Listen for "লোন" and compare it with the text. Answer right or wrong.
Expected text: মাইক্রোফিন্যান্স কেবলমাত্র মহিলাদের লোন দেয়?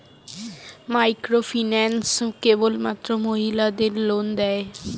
right